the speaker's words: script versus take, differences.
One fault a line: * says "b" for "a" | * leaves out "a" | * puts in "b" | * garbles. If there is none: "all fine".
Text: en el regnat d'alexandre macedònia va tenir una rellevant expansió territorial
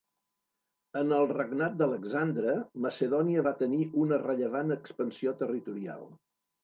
all fine